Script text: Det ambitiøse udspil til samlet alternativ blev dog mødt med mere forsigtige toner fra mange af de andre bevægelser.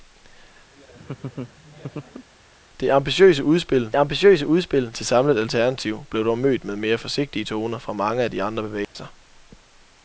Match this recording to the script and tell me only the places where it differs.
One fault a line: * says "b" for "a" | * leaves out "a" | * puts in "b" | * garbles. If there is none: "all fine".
* puts in "ambitiøse udspil"